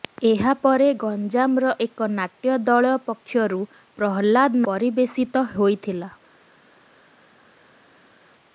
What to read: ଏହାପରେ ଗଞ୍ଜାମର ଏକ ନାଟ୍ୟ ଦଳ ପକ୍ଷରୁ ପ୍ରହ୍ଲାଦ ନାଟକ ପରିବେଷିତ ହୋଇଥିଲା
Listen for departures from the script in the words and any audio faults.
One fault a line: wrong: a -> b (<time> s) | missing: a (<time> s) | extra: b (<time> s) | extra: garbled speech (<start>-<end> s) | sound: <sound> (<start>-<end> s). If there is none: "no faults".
missing: ନାଟକ (4.7 s)